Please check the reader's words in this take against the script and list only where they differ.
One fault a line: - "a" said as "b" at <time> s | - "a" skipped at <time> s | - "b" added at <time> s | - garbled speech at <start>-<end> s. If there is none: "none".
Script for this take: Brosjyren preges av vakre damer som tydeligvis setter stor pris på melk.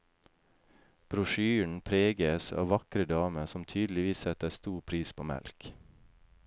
none